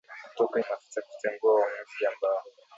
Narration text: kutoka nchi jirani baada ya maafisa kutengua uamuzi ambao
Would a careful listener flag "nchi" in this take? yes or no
yes